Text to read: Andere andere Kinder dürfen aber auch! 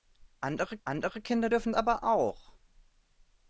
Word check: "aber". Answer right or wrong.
right